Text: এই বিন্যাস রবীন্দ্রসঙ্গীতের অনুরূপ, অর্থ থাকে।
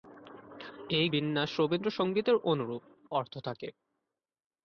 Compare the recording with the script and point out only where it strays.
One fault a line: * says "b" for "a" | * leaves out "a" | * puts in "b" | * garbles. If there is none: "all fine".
all fine